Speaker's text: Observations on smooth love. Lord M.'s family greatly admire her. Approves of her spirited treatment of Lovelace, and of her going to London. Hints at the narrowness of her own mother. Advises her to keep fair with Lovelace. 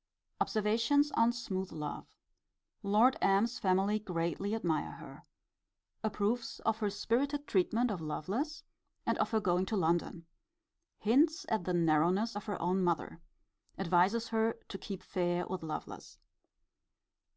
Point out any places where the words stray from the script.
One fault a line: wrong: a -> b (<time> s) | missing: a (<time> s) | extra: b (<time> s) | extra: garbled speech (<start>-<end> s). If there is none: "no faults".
no faults